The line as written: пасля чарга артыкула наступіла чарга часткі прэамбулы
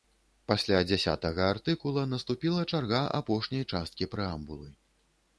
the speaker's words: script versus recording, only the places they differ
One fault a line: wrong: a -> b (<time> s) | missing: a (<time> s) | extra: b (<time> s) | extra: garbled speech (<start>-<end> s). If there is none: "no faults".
wrong: чарга -> дзясятага (0.9 s)
extra: апошняй (3.2 s)